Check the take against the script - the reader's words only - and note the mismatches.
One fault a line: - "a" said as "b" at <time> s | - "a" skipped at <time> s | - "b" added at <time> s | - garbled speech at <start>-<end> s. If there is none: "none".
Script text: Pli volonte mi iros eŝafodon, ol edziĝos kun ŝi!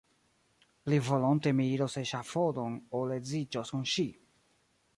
none